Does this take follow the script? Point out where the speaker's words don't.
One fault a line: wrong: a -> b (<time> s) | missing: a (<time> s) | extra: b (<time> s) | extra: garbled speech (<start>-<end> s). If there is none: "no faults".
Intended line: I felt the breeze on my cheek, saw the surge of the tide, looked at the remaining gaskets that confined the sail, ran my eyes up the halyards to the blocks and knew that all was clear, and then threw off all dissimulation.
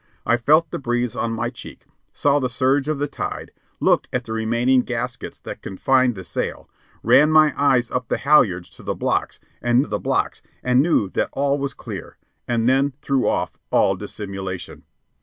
extra: the blocks and (9.9 s)